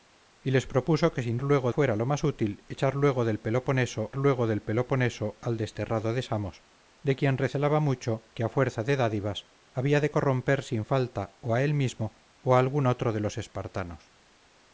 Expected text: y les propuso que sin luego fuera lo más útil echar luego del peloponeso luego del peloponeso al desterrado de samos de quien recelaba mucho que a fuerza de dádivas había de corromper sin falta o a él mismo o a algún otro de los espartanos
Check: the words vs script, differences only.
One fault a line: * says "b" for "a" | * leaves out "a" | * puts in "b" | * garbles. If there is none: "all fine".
all fine